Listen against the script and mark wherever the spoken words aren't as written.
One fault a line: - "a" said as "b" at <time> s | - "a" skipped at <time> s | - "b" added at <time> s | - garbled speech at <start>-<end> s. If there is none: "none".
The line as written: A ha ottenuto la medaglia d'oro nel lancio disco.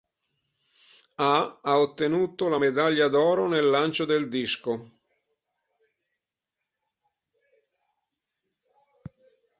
- "del" added at 4.0 s